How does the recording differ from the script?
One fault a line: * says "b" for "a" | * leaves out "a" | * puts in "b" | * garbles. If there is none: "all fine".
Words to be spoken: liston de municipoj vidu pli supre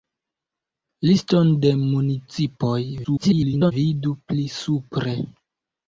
* garbles